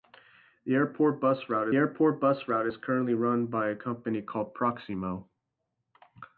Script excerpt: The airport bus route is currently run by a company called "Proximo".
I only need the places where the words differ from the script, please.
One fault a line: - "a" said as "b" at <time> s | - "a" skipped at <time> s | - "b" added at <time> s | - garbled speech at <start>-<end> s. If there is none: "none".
- "airport bus route" added at 1.7 s